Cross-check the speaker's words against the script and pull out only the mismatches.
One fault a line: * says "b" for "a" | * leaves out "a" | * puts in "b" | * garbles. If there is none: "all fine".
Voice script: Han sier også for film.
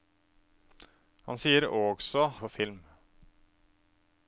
all fine